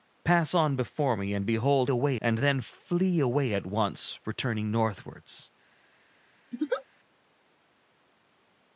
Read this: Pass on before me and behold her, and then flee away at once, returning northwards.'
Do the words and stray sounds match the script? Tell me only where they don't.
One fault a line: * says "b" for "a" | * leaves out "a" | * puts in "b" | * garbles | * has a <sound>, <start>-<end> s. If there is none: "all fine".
* says "away" for "her"
* has a laugh, 6.5-6.8 s